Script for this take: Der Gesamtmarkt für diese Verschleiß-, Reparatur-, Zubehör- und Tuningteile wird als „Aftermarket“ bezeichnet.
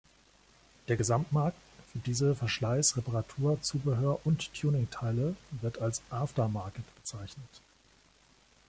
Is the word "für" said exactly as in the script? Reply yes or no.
yes